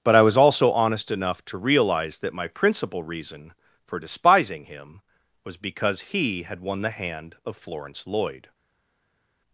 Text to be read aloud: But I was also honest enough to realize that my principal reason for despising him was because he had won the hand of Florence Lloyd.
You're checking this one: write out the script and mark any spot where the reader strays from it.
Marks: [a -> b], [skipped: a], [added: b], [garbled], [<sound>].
But I was also honest enough to realize that my principal reason for despising him was because he had won the hand of Florence Lloyd.